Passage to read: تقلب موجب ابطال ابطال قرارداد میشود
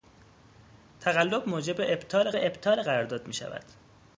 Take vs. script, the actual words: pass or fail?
pass